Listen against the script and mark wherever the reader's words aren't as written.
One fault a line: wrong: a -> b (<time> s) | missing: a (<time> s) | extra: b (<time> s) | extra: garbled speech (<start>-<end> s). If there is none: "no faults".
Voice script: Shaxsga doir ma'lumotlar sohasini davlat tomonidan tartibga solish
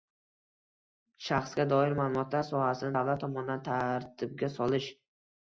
no faults